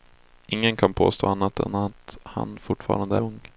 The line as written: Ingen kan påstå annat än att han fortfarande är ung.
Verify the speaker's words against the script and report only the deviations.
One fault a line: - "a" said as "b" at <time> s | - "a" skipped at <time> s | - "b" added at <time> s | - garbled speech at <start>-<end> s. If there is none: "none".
- "är" skipped at 3.2 s